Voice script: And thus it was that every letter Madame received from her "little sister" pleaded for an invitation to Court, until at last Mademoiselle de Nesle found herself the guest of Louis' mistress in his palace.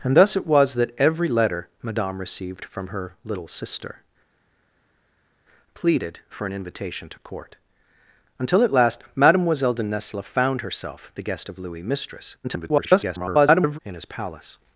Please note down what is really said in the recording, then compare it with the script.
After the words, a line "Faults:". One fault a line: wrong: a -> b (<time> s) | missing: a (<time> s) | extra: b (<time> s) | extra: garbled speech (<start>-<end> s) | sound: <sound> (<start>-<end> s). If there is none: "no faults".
And thus it was that every letter Madame received from her "little sister" pleaded for an invitation to Court, until at last Mademoiselle de Nesle found herself the guest of Louis' mistress [garbled] in his palace.
Faults:
extra: garbled speech (12.4-13.8 s)